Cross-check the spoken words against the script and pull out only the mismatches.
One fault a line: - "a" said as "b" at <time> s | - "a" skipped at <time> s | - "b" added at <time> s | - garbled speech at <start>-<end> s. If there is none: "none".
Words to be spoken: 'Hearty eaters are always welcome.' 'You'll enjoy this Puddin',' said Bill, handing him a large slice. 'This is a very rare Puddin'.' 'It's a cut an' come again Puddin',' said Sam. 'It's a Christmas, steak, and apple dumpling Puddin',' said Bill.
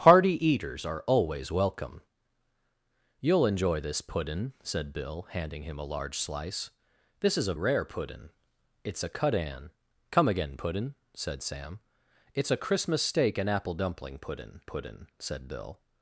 - "very" skipped at 7.5 s
- "Puddin" added at 14.6 s